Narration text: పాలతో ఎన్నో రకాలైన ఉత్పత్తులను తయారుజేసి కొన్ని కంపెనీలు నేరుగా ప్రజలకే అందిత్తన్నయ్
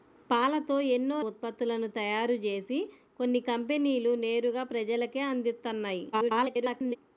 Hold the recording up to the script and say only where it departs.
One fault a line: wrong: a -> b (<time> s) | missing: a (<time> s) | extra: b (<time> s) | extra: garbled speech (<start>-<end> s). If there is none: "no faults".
missing: రకాలైన (1.2 s)
extra: garbled speech (6.1-7.0 s)